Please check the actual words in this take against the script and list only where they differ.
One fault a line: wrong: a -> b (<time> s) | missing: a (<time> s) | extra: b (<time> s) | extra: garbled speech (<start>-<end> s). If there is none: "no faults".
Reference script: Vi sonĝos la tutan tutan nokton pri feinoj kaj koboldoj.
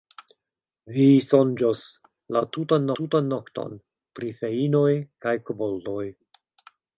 no faults